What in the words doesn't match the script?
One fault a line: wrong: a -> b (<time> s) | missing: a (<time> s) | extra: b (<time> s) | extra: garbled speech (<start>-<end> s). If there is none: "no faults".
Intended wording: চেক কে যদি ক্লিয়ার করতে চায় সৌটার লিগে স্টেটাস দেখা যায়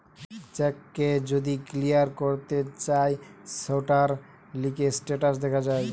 no faults